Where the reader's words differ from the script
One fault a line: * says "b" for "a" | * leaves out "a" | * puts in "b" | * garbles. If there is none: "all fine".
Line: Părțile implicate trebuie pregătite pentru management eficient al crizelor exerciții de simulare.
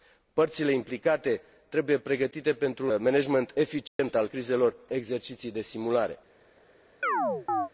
all fine